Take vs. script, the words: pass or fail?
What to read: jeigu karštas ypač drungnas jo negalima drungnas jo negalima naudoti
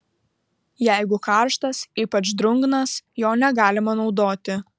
fail